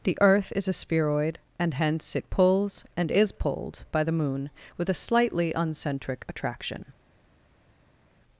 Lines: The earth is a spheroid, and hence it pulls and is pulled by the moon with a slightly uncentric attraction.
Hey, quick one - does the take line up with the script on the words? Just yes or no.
yes